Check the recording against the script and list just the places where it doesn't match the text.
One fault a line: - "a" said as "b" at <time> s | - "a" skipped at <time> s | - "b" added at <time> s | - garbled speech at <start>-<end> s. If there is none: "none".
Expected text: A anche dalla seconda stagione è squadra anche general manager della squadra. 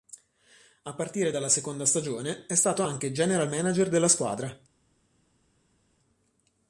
- "anche" said as "partire" at 0.9 s
- "squadra" said as "stato" at 2.5 s